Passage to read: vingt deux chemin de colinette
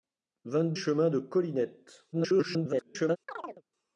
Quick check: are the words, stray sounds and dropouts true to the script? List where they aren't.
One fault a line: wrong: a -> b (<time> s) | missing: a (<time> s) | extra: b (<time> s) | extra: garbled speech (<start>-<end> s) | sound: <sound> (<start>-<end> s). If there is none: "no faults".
missing: deux (0.7 s)
extra: garbled speech (2.1-3.2 s)
sound: chirp (3.3-3.6 s)